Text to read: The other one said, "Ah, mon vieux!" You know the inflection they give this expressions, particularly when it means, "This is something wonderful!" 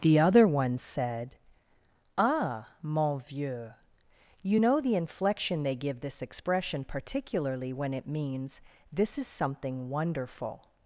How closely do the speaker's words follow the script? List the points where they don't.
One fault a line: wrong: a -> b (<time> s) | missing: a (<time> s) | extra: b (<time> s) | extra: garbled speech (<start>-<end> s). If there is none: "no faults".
wrong: expressions -> expression (6.2 s)